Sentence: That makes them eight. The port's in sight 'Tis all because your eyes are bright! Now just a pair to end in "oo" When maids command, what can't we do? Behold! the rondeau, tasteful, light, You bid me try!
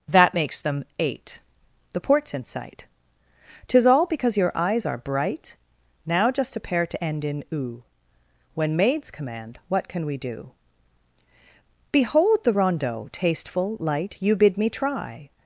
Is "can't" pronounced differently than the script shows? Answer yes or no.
yes